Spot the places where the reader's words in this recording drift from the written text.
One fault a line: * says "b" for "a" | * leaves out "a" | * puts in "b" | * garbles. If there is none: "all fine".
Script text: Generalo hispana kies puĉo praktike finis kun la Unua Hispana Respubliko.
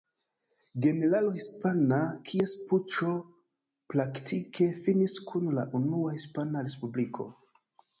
all fine